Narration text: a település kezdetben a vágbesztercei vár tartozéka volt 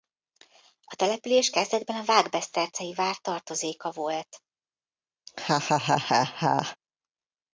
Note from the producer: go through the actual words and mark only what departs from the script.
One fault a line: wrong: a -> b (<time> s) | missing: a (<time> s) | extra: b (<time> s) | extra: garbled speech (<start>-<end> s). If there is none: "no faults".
no faults